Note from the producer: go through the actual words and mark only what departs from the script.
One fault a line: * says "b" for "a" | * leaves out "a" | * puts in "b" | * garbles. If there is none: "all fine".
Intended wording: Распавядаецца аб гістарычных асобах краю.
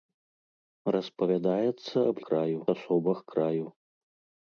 * says "краю" for "гістарычных"